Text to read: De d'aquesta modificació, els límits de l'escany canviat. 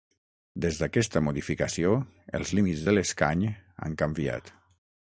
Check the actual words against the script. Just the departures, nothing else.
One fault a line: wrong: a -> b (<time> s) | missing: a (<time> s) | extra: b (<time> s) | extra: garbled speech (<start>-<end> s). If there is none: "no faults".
wrong: De -> Des (0.6 s)
extra: han (3.9 s)